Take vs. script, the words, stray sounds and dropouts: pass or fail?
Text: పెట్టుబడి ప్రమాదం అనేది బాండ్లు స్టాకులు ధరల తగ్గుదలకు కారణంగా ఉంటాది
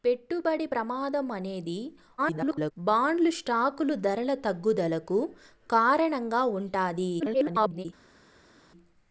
fail